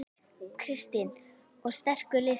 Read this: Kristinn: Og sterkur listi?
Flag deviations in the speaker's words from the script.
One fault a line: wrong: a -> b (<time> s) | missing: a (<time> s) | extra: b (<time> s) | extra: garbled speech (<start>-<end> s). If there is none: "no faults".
no faults